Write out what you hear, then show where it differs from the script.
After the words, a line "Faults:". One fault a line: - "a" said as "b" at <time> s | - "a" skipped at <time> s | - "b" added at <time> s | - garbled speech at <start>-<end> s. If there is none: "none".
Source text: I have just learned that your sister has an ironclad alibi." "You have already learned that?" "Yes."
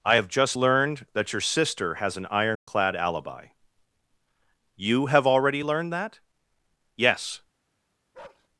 I have just learned that your sister has an ironclad alibi." "You have already learned that?" "Yes."
Faults:
none